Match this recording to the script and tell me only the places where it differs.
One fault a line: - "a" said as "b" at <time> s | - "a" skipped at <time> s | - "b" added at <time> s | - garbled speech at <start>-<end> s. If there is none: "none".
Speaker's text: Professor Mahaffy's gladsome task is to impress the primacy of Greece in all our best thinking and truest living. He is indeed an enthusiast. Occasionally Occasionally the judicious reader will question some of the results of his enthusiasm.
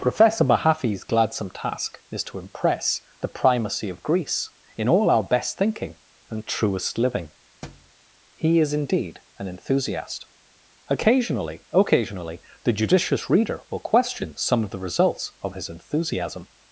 none